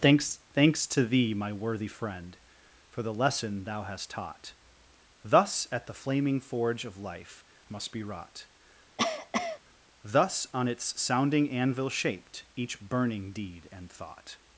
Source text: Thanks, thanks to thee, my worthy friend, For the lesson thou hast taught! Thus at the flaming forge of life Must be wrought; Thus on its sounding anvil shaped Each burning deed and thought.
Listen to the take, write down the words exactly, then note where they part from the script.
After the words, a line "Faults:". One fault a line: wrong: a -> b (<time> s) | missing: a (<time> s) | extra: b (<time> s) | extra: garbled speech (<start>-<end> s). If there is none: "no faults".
Thanks, thanks to thee, my worthy friend, For the lesson thou hast taught! Thus at the flaming forge of life Must be wrought; Thus on its sounding anvil shaped Each burning deed and thought.
Faults:
no faults